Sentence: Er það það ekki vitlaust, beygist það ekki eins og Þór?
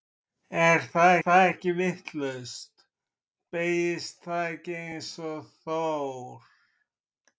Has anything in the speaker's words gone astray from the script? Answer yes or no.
no